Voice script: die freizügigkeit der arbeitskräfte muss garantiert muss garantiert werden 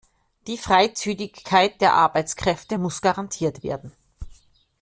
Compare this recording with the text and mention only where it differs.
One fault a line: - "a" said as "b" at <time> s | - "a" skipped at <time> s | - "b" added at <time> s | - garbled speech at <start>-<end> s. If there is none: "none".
- "muss garantiert" skipped at 3.6 s